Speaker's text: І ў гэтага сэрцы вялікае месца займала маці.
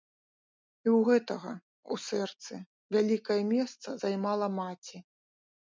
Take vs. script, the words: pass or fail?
fail